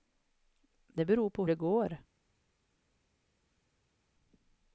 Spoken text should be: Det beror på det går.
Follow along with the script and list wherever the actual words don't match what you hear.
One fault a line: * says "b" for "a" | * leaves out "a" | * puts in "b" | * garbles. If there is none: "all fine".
all fine